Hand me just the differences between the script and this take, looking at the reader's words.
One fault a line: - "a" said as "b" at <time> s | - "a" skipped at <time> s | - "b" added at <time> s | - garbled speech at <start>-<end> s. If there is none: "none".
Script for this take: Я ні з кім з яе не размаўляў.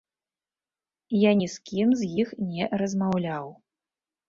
- "яе" said as "іх" at 2.2 s